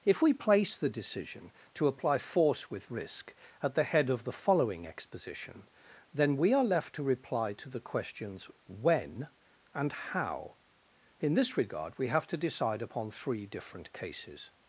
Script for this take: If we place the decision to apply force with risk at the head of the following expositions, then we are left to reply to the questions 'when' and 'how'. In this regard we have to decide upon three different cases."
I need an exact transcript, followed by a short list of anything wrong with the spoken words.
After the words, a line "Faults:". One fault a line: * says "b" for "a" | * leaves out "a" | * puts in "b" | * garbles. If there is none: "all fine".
If we place the decision to apply force with risk at the head of the following exposition, then we are left to reply to the questions 'when' and 'how'. In this regard we have to decide upon three different cases."
Faults:
* says "exposition" for "expositions"